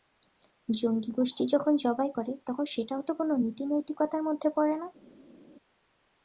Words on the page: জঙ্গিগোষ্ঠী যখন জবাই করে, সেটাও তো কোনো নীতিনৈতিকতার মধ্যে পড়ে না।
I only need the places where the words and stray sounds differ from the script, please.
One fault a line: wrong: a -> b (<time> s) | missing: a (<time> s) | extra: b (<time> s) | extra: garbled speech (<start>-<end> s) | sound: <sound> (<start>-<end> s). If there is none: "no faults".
extra: তখন (2.5 s)